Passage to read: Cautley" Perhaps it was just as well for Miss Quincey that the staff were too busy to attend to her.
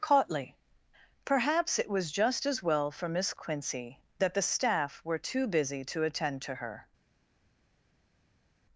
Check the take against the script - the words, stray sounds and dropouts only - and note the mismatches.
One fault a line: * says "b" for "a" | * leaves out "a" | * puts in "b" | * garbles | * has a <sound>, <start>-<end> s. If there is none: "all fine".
all fine